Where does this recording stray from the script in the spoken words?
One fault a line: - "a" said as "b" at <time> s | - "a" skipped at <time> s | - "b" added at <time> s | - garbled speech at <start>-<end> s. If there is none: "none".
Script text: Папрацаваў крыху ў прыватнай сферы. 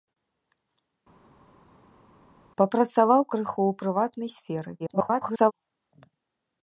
- garbled speech at 4.8-5.5 s